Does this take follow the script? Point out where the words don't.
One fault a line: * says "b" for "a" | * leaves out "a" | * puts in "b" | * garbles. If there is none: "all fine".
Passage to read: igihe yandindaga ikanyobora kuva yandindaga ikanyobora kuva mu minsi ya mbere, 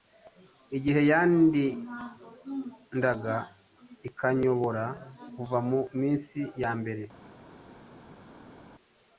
* leaves out "yandindaga ikanyobora kuva"